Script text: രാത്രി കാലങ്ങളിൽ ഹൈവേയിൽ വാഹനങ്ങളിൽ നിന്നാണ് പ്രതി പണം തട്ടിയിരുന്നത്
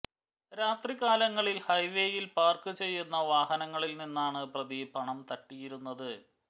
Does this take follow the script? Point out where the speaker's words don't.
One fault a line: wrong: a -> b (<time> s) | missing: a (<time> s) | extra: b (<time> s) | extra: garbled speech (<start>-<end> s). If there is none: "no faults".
extra: പാർക്ക് ചെയ്യുന്ന (2.4 s)